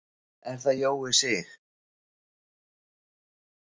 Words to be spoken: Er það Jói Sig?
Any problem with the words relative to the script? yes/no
no